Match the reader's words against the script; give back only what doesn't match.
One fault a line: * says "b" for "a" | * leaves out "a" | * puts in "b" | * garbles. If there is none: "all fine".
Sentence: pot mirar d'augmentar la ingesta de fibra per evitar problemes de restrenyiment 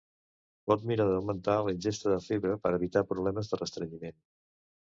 all fine